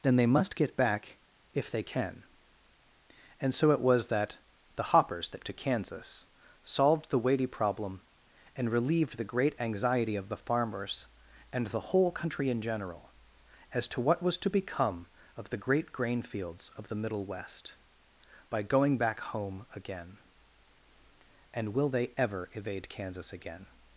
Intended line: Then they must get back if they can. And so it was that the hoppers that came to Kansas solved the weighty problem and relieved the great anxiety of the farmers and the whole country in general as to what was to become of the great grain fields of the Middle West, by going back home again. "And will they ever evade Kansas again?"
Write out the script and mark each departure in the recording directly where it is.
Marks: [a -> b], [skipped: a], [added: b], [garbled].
Then they must get back if they can. And so it was that the hoppers that [skipped: came] to Kansas solved the weighty problem and relieved the great anxiety of the farmers and the whole country in general as to what was to become of the great grain fields of the Middle West, by going back home again. "And will they ever evade Kansas again?"